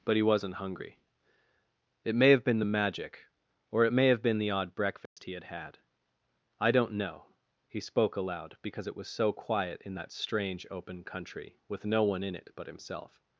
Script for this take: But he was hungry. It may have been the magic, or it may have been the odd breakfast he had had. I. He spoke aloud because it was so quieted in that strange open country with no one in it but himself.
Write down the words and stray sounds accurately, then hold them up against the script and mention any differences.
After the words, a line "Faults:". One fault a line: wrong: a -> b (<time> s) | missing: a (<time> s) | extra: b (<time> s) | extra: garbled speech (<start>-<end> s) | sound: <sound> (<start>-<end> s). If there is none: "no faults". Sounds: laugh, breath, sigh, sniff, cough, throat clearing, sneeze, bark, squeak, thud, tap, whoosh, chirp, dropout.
But he wasn't hungry. It may have been the magic, or it may have been the odd breakfast he had had. I don't know. He spoke aloud because it was so quiet in that strange open country with no one in it but himself.
Faults:
wrong: was -> wasn't (0.2 s)
sound: dropout (5.1-5.2 s)
extra: don't know (6.7 s)
wrong: quieted -> quiet (9.3 s)